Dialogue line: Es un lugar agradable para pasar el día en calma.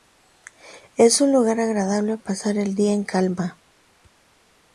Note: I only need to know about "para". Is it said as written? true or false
false